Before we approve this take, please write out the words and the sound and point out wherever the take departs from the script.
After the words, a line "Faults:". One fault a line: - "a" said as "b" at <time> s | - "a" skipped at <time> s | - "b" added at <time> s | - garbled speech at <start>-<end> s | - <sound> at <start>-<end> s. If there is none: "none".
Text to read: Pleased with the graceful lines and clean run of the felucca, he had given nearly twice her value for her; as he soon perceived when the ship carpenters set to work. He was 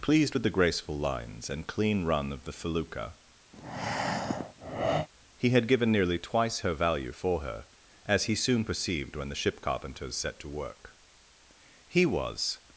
Pleased with the graceful lines and clean run of the felucca, he had given nearly twice her value for her; as he soon perceived when the ship carpenters set to work. He was
Faults:
- breath at 3.5-5.1 s